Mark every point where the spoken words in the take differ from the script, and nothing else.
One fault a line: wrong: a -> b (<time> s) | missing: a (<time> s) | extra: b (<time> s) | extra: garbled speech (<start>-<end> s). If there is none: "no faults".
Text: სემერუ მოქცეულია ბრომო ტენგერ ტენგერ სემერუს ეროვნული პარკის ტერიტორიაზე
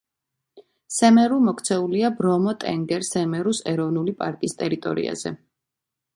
missing: ტენგერ (3.1 s)